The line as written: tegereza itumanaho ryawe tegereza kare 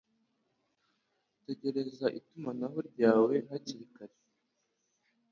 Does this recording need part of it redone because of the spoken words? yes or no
yes